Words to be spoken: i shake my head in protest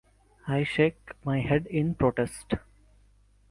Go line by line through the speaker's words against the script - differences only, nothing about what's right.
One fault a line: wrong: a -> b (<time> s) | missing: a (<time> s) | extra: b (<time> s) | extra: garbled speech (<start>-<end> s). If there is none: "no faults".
no faults